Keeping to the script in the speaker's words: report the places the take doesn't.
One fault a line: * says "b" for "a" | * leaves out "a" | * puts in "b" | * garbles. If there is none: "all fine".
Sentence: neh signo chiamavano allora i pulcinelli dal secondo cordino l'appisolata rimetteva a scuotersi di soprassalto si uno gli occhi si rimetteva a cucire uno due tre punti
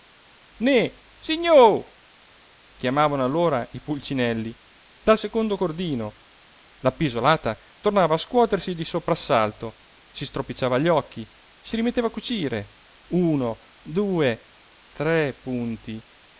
* says "tornava" for "rimetteva"
* says "stropicciava" for "uno"